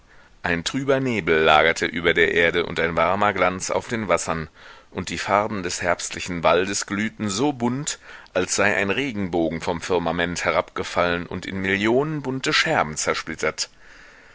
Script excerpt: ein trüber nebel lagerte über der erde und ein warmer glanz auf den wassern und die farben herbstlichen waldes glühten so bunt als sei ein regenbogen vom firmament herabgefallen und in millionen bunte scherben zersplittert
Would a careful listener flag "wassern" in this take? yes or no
no